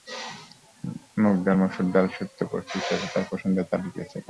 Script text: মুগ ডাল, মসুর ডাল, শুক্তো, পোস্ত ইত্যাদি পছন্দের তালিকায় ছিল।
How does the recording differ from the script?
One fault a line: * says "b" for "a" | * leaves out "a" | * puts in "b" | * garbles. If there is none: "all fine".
* puts in "তাঁর"